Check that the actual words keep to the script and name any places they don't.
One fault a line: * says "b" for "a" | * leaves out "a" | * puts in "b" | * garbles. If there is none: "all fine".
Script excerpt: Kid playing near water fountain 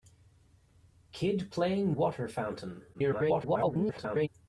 * leaves out "near"
* garbles